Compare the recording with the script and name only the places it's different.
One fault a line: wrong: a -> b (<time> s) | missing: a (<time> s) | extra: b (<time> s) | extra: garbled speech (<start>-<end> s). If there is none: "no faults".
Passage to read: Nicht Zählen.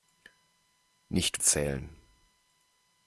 no faults